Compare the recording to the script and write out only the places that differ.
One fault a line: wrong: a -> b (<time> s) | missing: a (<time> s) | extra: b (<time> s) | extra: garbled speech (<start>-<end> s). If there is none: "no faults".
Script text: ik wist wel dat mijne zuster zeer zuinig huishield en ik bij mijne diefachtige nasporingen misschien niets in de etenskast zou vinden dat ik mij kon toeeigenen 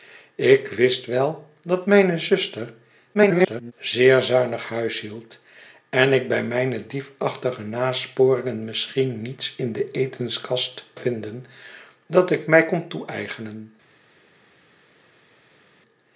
extra: garbled speech (3.1-3.7 s)
missing: zou (10.8 s)